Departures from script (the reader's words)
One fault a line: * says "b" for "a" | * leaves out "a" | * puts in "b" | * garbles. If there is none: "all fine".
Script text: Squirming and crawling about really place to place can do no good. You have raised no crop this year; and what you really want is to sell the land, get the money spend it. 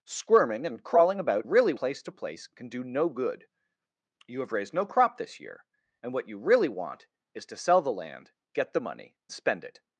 all fine